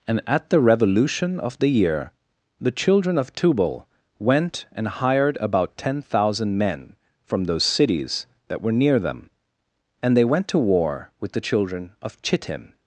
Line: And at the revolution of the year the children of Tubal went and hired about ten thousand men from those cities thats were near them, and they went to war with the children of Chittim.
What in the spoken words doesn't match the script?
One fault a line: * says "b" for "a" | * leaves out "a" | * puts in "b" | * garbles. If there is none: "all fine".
* says "that" for "thats"